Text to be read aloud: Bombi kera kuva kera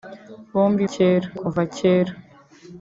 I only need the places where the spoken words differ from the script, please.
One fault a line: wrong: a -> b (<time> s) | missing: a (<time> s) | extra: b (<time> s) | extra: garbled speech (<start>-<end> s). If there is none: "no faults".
no faults